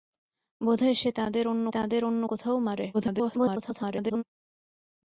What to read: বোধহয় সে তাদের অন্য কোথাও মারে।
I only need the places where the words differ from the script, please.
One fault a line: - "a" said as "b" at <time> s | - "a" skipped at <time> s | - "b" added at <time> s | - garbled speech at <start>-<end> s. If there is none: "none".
- "তাদের অন্য" added at 1.7 s
- garbled speech at 2.9-4.2 s